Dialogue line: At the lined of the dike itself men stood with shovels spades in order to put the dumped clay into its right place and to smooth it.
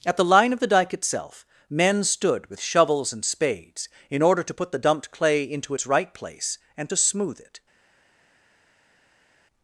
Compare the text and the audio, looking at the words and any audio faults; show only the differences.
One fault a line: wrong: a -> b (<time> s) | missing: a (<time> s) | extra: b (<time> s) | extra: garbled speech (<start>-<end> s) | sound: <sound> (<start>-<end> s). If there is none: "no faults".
wrong: lined -> line (0.2 s)
extra: and (3.1 s)